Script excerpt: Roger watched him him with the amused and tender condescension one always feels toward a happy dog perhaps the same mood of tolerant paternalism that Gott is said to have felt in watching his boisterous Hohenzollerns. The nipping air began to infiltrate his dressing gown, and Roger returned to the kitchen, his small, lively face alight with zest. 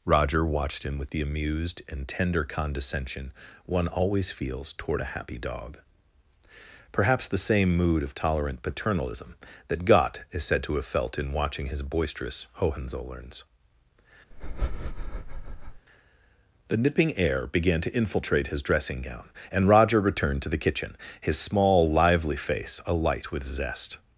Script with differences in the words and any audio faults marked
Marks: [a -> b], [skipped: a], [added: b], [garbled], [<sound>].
Roger watched him [skipped: him] with the amused and tender condescension one always feels toward a happy dog perhaps the same mood of tolerant paternalism that Gott is said to have felt in watching his boisterous Hohenzollerns. [breath] The nipping air began to infiltrate his dressing gown, and Roger returned to the kitchen, his small, lively face alight with zest.